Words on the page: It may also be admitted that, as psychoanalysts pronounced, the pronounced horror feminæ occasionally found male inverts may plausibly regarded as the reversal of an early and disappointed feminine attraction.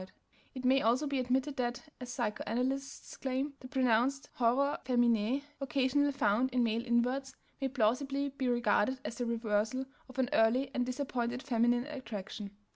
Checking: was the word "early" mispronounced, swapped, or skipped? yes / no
no